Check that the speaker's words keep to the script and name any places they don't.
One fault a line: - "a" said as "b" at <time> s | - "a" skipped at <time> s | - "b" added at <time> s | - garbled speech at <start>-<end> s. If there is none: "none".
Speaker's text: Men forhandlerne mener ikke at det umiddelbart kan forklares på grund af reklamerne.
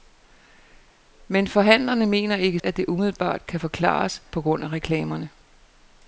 none